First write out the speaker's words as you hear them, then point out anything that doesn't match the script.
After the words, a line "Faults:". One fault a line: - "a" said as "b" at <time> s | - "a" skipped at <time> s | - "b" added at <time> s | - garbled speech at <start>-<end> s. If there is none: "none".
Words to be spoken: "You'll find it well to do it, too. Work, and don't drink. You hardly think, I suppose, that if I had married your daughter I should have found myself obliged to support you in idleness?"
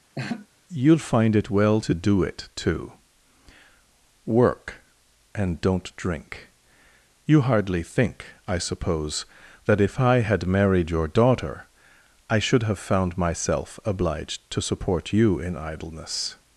"You'll find it well to do it, too. Work, and don't drink. You hardly think, I suppose, that if I had married your daughter I should have found myself obliged to support you in idleness?"
Faults:
none